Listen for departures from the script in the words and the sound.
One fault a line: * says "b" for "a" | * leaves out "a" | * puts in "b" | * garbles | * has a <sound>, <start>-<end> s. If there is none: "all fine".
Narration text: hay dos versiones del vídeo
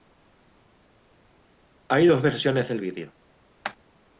all fine